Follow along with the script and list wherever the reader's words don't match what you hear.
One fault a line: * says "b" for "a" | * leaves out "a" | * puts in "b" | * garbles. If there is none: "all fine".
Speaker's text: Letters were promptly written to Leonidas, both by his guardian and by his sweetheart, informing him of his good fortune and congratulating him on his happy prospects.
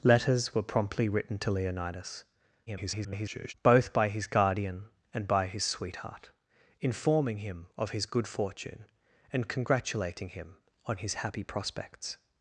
* garbles